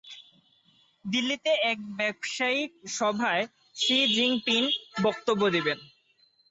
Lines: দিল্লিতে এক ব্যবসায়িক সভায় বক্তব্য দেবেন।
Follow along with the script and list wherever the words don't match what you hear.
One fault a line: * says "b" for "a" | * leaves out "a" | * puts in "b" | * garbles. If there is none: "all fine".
* puts in "শি জিনপিং"